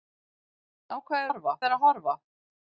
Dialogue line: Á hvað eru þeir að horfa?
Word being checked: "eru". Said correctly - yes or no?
no